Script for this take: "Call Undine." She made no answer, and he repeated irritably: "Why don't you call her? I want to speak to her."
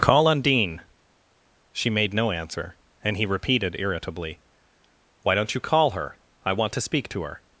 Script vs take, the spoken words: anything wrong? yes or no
no